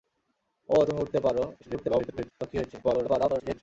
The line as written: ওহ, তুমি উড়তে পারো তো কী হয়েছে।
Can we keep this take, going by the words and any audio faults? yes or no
no